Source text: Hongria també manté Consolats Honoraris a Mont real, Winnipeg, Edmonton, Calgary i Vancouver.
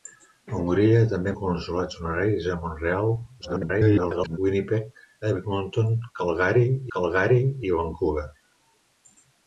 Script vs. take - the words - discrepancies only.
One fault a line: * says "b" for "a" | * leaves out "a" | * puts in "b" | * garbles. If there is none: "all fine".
* leaves out "manté"
* garbles
* puts in "Calgary"